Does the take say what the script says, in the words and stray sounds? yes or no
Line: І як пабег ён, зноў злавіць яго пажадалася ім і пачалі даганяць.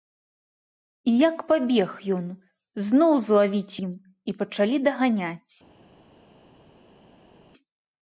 no